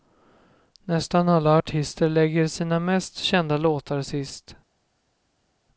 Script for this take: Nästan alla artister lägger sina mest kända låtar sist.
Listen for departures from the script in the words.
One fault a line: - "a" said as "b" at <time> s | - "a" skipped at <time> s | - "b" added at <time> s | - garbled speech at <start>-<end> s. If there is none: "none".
none